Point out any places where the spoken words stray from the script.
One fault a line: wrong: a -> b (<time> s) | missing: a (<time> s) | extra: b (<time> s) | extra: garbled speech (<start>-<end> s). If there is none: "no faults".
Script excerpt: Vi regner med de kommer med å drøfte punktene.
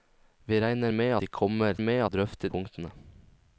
no faults